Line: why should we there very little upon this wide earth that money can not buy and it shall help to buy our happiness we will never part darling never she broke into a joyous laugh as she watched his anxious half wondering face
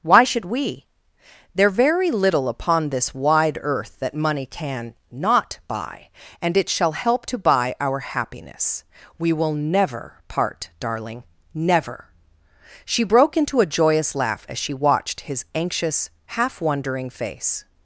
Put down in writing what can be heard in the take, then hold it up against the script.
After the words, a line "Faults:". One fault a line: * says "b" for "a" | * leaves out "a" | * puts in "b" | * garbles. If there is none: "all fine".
why should we there very little upon this wide earth that money can not buy and it shall help to buy our happiness we will never part darling never she broke into a joyous laugh as she watched his anxious half wondering face
Faults:
all fine